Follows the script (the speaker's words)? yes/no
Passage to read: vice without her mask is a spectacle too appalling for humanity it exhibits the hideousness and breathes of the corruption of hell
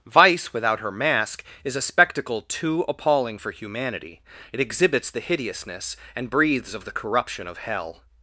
yes